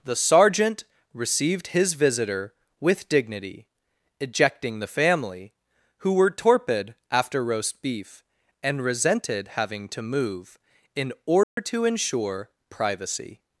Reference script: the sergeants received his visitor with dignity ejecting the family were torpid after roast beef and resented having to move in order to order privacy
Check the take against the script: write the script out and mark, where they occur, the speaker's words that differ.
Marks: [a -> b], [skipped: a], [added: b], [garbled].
the [sergeants -> sergeant] received his visitor with dignity ejecting the family [added: who] were torpid after roast beef and resented having to move in order to [order -> ensure] privacy